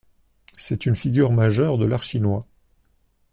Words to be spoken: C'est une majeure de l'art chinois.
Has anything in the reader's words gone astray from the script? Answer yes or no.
yes